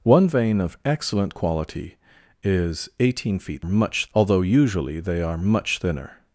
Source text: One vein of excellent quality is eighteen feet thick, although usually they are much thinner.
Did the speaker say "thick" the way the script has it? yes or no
no